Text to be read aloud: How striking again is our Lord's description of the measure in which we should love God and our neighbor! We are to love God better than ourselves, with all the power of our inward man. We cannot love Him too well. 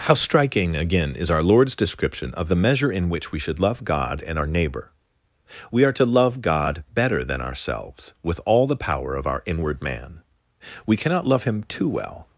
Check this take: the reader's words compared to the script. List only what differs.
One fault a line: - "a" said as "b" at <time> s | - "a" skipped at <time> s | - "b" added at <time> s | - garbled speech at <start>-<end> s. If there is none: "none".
none